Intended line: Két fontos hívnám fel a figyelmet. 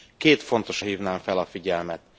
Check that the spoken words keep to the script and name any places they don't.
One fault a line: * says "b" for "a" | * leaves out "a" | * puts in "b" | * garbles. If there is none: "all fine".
all fine